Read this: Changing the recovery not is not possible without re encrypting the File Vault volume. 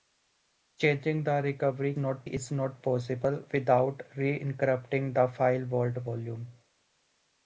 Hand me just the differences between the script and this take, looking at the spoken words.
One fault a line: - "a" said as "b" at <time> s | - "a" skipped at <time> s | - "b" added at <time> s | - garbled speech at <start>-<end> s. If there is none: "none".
none